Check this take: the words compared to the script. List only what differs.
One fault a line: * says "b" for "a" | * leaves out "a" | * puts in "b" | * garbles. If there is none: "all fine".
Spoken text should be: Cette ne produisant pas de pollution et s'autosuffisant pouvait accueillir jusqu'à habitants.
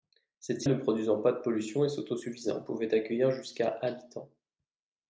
all fine